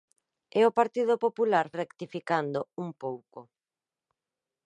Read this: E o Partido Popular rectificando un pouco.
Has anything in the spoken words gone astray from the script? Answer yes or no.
no